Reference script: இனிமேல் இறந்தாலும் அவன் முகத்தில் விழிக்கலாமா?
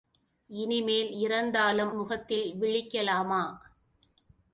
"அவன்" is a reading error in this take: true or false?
true